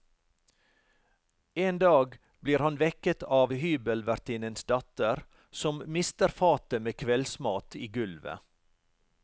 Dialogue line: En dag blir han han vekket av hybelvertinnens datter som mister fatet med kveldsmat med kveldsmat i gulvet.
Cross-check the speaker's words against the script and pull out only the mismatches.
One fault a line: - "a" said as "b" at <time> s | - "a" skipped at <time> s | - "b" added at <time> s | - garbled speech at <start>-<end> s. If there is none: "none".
- "han" skipped at 2.8 s
- "med kveldsmat" skipped at 7.8 s